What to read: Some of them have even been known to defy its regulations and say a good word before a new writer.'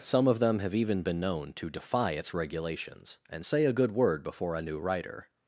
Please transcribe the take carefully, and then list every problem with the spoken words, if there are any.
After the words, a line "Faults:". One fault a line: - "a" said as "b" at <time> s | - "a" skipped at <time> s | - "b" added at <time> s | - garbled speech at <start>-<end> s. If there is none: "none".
Some of them have even been known to defy its regulations and say a good word before a new writer.'
Faults:
none